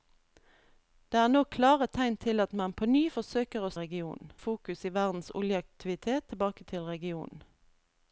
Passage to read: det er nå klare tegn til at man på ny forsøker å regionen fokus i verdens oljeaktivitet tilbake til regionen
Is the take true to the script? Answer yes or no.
yes